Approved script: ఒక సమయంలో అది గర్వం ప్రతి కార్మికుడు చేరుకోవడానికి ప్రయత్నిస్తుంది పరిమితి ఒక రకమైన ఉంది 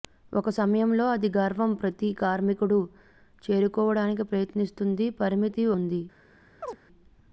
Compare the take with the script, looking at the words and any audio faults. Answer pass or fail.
fail